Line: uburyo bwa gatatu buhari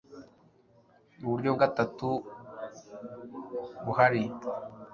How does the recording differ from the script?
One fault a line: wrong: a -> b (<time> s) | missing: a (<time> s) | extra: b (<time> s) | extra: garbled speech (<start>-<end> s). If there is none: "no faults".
missing: bwa (1.5 s)